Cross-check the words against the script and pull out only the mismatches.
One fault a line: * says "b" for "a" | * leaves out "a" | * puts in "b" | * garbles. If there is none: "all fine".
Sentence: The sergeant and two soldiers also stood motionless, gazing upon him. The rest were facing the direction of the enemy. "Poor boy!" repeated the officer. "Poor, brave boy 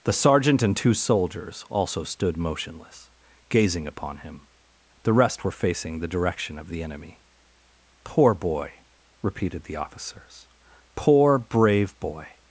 * says "officers" for "officer"